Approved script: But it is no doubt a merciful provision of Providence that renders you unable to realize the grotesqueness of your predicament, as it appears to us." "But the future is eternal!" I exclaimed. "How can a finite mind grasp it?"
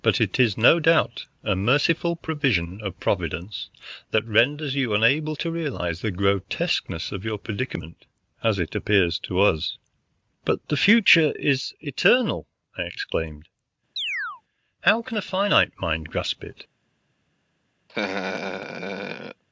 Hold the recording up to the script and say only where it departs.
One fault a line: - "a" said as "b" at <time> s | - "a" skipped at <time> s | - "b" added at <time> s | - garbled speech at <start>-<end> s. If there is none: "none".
none